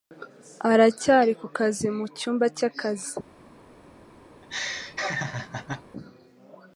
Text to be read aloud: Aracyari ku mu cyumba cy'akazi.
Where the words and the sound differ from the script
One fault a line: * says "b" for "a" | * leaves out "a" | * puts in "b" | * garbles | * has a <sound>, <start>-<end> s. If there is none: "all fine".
* puts in "kazi"
* has a laugh, 4.4-5.8 s